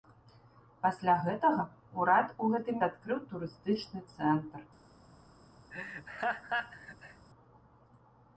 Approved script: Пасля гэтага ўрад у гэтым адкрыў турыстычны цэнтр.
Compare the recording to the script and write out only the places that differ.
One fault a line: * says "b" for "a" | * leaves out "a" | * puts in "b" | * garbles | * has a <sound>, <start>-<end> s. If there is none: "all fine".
* has a laugh, 5.7-7.3 s